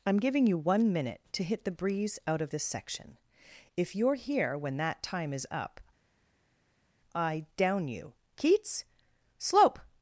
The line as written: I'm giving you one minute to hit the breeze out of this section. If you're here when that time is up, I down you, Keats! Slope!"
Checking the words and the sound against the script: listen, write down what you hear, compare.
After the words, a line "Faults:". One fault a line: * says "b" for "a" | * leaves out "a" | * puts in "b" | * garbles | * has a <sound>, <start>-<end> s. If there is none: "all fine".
I'm giving you one minute to hit the breeze out of this section. If you're here when that time is up, I down you, Keats! Slope!"
Faults:
all fine